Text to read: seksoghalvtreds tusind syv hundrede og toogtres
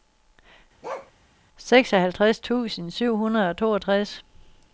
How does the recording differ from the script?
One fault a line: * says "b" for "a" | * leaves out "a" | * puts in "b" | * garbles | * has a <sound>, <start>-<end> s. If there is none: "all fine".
* has a bark, 0.8-1.1 s